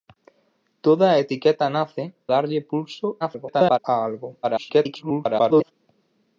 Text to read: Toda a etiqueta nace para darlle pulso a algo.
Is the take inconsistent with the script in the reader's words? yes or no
yes